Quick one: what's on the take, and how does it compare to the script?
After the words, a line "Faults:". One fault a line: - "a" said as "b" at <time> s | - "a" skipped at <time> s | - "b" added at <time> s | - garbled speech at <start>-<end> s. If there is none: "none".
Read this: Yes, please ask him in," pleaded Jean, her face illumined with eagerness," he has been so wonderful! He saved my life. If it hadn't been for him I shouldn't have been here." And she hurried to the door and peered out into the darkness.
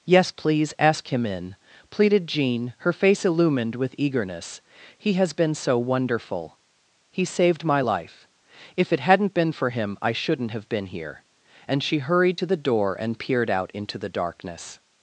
Yes, please ask him in," pleaded Jean, her face illumined with eagerness," he has been so wonderful! He saved my life. If it hadn't been for him I shouldn't have been here." And she hurried to the door and peered out into the darkness.
Faults:
none